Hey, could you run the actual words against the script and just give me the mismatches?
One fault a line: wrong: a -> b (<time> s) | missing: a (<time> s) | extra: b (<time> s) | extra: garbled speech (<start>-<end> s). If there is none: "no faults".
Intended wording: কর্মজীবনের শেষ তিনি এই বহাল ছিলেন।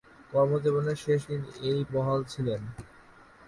no faults